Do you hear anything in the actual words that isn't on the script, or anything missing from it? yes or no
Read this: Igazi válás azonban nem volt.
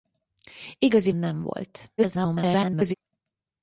yes